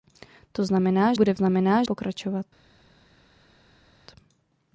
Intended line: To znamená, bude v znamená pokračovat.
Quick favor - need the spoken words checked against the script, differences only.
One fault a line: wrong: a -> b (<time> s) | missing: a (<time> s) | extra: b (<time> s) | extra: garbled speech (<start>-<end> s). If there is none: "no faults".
no faults